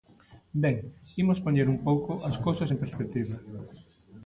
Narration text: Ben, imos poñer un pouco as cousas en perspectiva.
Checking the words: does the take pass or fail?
pass